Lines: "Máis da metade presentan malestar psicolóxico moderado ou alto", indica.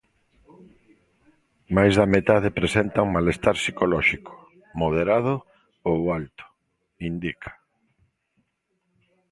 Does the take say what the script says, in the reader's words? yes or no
yes